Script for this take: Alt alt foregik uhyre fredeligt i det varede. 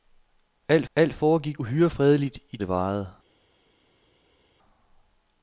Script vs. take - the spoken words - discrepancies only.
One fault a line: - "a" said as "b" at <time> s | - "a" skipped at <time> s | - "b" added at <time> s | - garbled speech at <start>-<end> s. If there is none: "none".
none